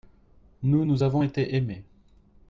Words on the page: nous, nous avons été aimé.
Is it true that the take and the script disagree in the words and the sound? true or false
false